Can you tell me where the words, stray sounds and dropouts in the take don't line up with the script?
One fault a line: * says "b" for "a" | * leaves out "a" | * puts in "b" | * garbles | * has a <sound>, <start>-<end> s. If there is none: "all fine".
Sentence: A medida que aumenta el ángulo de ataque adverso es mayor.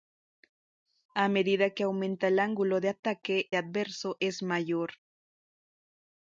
all fine